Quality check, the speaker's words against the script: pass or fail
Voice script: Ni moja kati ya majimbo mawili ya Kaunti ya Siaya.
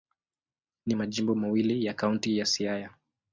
fail